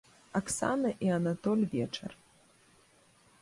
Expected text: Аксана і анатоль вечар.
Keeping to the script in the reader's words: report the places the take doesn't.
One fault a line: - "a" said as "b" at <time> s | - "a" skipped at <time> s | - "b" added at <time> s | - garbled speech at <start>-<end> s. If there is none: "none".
none